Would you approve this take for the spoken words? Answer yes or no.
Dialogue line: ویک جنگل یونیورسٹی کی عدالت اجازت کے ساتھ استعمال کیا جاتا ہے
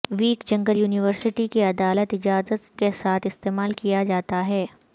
yes